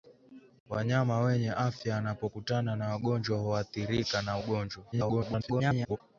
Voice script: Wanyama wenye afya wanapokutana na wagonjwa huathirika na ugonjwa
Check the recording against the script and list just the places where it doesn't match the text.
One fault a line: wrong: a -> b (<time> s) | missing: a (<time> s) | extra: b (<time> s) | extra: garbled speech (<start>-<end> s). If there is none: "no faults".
extra: garbled speech (4.9-6.0 s)